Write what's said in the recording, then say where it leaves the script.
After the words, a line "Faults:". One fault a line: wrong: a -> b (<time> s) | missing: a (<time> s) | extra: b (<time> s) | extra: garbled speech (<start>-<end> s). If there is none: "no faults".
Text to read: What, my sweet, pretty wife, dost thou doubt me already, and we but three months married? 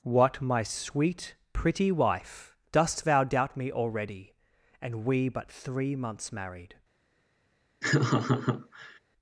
What, my sweet, pretty wife, dost thou doubt me already, and we but three months married?
Faults:
no faults